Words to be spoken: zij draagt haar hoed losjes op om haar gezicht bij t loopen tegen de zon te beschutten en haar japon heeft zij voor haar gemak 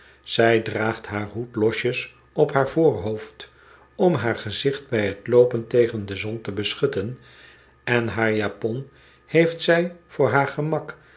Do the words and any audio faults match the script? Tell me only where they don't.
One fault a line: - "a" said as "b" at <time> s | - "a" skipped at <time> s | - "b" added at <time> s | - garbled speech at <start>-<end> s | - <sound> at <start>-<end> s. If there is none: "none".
- "haar voorhoofd" added at 2.5 s